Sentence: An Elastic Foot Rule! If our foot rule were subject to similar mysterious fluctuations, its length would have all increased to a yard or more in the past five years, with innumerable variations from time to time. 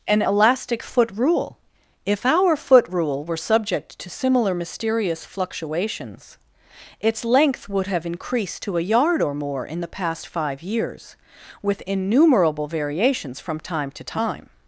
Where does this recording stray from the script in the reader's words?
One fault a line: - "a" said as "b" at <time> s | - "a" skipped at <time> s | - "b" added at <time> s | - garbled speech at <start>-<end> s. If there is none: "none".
- "all" skipped at 8.0 s